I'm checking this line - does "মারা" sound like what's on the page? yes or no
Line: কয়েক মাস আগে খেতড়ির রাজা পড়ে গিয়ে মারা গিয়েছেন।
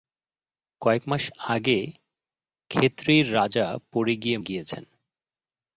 no